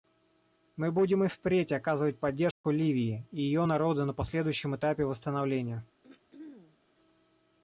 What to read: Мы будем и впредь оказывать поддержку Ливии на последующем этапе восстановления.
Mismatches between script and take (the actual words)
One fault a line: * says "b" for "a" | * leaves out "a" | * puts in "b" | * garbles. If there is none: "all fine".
* puts in "и ее народу"